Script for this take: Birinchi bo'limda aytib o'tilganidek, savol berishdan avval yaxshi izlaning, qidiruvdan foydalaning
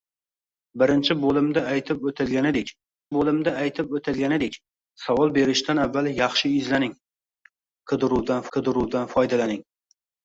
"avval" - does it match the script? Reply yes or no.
yes